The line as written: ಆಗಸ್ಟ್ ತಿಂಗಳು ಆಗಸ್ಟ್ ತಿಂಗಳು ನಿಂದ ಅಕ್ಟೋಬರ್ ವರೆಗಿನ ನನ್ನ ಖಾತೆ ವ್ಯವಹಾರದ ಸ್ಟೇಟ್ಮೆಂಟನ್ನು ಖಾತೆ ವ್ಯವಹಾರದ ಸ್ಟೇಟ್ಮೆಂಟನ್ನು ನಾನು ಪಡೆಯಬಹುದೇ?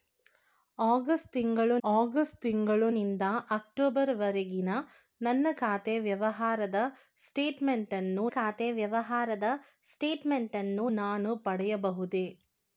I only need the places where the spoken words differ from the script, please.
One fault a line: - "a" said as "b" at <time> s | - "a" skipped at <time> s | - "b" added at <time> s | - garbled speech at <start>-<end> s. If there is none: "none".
none